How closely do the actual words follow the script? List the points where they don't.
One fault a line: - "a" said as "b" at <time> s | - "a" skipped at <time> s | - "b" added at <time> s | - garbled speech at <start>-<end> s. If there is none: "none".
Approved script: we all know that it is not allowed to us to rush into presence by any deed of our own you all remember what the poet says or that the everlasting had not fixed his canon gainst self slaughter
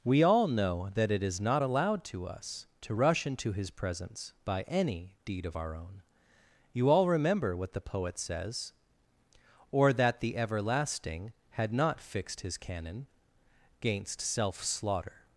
- "his" added at 3.5 s